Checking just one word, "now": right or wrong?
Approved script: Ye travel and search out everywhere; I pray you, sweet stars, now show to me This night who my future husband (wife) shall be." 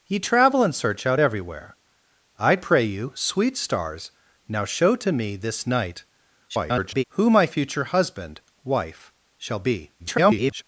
right